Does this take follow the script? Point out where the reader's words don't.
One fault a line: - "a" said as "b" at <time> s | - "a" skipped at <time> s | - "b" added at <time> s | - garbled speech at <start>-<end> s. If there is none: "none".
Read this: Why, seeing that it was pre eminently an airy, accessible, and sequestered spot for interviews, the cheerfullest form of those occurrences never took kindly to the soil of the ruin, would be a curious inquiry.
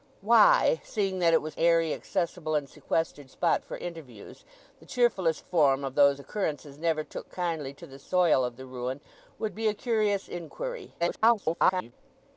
- "pre eminently an" skipped at 1.6 s
- garbled speech at 11.0-11.9 s